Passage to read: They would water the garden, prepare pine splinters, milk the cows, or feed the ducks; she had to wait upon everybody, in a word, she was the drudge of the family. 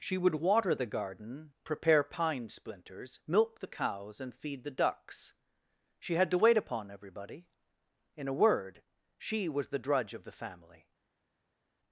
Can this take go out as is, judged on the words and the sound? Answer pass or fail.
fail